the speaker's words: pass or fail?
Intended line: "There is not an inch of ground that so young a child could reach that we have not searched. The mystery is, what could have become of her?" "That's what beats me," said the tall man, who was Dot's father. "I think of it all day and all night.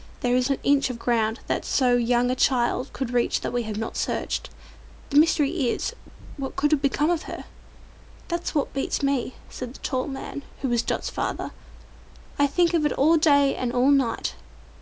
fail